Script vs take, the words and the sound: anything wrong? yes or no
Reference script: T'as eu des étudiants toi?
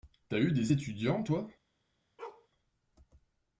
yes